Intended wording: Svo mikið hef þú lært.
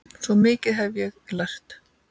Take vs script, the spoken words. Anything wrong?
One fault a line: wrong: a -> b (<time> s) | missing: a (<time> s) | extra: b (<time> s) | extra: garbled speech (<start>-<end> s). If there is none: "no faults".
wrong: þú -> ég (1.0 s)